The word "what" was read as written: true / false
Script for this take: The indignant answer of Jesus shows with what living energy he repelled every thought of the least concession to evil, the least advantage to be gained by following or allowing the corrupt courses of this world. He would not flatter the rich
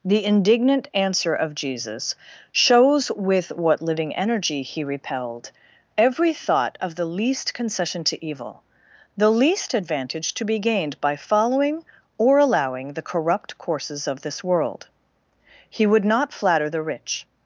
true